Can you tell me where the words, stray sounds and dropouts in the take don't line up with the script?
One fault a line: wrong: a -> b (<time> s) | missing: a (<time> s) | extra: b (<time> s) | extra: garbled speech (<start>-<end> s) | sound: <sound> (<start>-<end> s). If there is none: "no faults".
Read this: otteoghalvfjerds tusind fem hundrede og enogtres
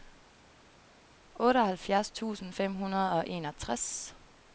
no faults